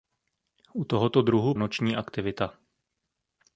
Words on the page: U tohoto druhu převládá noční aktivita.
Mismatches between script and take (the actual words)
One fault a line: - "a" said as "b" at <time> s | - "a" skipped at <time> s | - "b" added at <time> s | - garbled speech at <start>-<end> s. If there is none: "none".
- "převládá" skipped at 1.5 s